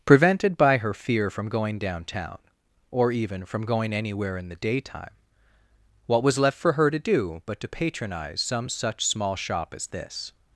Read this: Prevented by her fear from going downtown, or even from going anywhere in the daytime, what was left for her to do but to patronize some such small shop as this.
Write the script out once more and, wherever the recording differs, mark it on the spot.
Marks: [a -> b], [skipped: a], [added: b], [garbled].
Prevented by her fear from going downtown, or even from going anywhere in the daytime, what was left for her to do but to patronize some such small shop as this.